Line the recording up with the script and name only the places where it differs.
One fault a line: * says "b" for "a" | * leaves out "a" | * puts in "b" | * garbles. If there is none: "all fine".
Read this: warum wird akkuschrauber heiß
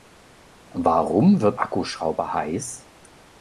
all fine